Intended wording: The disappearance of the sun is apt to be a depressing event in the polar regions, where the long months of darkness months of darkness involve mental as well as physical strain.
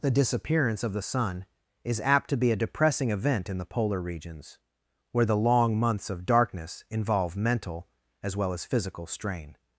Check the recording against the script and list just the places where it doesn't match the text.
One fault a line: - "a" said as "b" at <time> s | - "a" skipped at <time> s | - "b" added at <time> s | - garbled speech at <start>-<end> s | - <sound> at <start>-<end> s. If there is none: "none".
- "months of darkness" skipped at 6.9 s